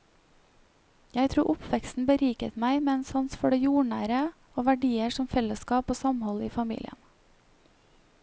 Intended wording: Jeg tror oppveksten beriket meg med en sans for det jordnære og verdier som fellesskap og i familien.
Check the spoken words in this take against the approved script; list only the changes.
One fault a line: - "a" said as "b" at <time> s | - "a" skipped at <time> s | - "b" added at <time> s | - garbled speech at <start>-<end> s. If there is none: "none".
- "samhold" added at 6.0 s